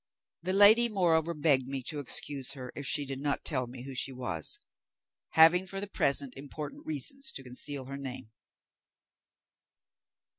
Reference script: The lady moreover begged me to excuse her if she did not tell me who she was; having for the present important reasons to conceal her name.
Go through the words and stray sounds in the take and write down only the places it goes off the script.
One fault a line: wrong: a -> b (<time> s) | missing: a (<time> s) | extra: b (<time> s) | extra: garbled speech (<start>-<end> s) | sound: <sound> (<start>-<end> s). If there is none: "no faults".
no faults